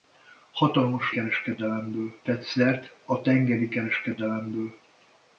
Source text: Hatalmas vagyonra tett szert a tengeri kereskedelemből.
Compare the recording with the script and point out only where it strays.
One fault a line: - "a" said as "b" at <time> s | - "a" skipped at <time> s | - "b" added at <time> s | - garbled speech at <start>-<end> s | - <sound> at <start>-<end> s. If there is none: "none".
- "vagyonra" said as "kereskedelemből" at 1.1 s